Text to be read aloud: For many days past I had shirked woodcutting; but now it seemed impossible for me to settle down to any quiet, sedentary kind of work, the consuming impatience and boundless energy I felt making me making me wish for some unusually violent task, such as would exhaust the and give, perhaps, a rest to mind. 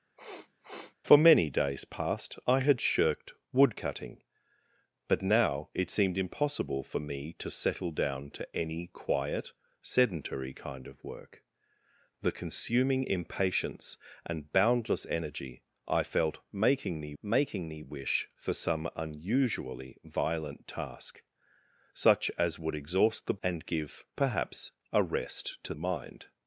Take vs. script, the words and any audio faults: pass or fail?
fail